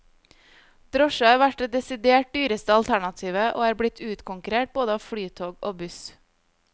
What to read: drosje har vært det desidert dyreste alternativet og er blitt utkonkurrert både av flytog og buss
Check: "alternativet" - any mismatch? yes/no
no